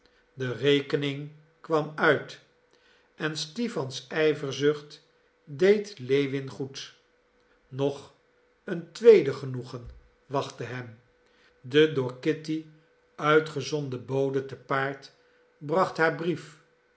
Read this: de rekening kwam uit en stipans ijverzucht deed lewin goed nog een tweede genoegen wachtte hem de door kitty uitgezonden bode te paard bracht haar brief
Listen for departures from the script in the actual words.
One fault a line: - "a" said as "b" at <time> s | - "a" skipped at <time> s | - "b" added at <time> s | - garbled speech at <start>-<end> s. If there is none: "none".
none